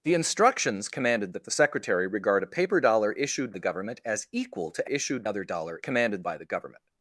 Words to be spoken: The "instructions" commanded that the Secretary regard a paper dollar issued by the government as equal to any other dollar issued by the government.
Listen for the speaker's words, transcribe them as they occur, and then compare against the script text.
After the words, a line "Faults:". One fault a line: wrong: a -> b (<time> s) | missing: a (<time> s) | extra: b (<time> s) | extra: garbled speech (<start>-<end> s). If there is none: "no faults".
The "instructions" commanded that the Secretary regard a paper dollar issued the government as equal to issued other dollar commanded by the government.
Faults:
missing: by (3.5 s)
wrong: any -> issued (4.8 s)
wrong: issued -> commanded (5.8 s)